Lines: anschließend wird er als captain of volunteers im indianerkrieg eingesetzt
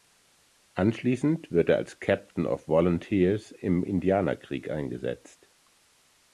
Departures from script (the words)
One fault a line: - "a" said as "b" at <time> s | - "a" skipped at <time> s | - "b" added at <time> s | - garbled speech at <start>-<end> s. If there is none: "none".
none